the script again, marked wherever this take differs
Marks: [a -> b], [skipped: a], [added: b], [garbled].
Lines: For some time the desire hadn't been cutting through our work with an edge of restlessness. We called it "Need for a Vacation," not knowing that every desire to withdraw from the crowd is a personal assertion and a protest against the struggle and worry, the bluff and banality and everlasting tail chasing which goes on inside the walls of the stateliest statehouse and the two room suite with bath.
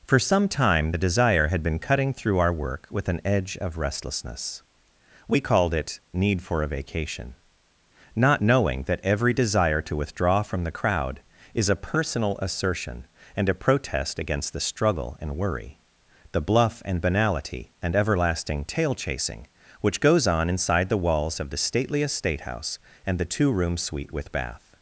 For some time the desire [hadn't -> had] been cutting through our work with an edge of restlessness. We called it "Need for a Vacation," not knowing that every desire to withdraw from the crowd is a personal assertion and a protest against the struggle and worry, the bluff and banality and everlasting tail chasing which goes on inside the walls of the stateliest statehouse and the two room suite with bath.